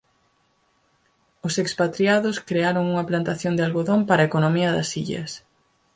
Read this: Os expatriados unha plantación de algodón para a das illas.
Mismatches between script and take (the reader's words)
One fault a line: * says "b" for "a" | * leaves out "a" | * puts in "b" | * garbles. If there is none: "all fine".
* puts in "crearon"
* puts in "economía"